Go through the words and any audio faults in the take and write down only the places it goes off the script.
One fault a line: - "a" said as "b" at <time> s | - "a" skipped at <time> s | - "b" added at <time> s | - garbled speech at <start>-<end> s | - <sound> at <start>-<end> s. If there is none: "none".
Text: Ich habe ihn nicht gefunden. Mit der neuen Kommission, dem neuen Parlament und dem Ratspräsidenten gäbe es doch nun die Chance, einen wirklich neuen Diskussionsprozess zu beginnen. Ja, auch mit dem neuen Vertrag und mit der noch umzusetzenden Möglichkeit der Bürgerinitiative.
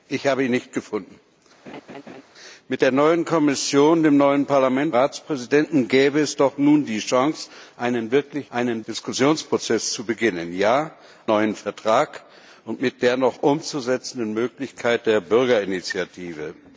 - laugh at 1.7-2.2 s
- "und dem" skipped at 5.0 s
- "neuen" said as "einen" at 8.5 s
- "auch mit dem" skipped at 10.9 s